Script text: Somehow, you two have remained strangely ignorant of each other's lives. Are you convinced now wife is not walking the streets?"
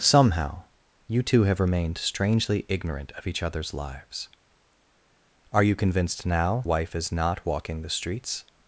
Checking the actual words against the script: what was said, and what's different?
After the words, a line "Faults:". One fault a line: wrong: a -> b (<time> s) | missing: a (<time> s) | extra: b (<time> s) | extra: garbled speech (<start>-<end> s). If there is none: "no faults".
Somehow, you two have remained strangely ignorant of each other's lives. Are you convinced now wife is not walking the streets?"
Faults:
no faults